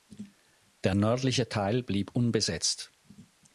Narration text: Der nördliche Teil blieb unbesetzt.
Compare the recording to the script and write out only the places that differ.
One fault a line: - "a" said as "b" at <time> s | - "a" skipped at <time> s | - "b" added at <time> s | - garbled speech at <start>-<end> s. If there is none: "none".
none